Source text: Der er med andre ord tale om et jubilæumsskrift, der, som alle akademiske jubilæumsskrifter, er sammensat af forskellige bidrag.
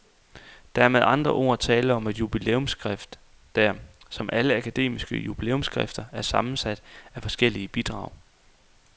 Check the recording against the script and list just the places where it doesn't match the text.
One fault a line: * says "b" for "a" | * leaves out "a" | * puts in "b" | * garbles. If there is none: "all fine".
all fine